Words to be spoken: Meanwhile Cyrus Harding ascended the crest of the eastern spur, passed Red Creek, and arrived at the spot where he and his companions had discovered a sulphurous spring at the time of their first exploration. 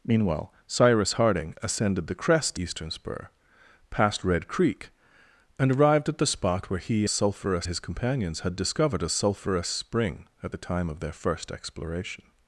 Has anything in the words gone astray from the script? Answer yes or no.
yes